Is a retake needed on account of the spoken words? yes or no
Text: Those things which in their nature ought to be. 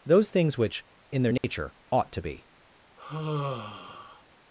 no